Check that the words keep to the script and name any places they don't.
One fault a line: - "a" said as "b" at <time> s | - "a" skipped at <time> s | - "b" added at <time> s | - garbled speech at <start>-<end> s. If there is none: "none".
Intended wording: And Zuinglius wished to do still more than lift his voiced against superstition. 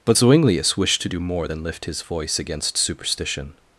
- "And" said as "But" at 0.0 s
- "still" skipped at 1.2 s
- "voiced" said as "voice" at 2.0 s